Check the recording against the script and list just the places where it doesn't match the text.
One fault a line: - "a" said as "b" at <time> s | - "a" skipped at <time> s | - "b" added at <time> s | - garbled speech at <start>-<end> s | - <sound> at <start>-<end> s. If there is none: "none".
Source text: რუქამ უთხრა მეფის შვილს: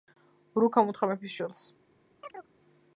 - chirp at 2.2-2.5 s